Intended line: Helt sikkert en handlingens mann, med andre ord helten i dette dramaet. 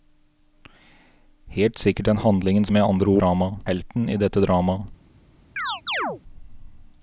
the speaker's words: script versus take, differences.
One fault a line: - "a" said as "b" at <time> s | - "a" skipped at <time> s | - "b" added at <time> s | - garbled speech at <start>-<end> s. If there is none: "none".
- "mann" skipped at 2.7 s
- "ord" said as "dramaet" at 3.2 s